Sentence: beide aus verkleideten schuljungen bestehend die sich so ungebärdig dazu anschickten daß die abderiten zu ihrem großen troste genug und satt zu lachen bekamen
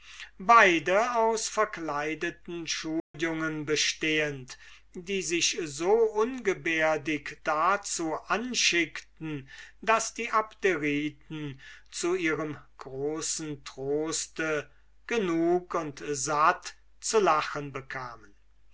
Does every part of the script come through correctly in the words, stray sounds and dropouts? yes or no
no